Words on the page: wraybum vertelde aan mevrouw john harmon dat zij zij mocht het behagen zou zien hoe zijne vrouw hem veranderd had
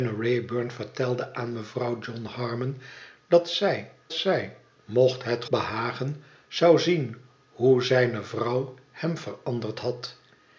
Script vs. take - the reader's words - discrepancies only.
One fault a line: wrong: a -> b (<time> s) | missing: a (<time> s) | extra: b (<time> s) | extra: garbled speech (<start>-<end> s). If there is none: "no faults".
no faults